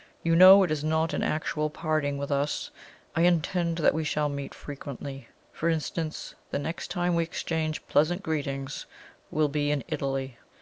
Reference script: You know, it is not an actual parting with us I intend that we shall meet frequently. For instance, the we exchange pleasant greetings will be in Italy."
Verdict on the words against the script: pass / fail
fail